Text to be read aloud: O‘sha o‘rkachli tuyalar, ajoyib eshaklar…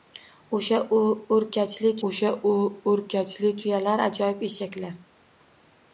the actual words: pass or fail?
fail